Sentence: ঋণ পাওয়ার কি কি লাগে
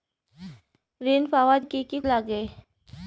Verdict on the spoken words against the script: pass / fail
pass